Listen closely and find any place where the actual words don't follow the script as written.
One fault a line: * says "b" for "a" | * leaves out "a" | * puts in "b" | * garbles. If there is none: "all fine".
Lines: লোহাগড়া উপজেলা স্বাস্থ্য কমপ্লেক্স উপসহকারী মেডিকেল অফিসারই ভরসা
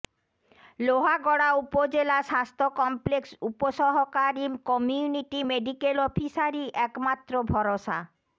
* puts in "কমিউনিটি"
* puts in "একমাত্র"